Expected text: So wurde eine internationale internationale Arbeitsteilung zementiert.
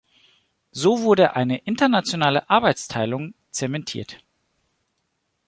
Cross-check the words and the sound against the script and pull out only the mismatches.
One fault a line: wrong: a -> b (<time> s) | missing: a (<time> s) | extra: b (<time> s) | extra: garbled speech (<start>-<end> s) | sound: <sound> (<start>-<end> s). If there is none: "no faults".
missing: internationale (2.5 s)